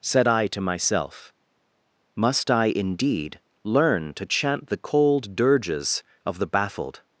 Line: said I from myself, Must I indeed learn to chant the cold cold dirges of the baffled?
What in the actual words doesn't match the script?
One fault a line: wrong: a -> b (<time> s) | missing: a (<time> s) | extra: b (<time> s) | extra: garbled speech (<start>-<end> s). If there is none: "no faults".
wrong: from -> to (0.5 s)
missing: cold (5.3 s)